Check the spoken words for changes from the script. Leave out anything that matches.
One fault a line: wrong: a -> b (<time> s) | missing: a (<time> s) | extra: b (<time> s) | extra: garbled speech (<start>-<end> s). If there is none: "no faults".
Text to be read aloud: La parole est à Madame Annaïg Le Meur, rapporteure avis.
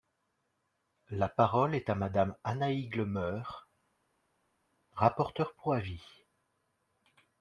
extra: pour (5.5 s)